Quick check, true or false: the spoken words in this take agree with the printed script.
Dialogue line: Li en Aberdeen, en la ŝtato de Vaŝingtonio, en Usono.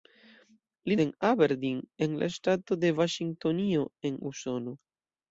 true